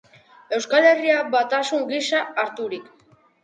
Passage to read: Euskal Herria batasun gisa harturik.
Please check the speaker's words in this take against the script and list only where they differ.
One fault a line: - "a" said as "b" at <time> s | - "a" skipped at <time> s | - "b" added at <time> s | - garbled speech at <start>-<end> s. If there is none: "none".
none